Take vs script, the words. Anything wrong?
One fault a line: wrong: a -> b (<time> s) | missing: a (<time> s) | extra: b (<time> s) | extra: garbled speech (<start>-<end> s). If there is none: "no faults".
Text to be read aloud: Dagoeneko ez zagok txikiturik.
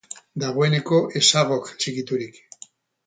no faults